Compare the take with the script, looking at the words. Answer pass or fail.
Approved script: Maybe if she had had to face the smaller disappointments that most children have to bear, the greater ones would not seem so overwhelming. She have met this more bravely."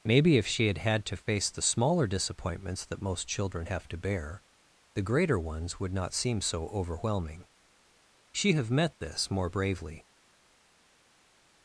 pass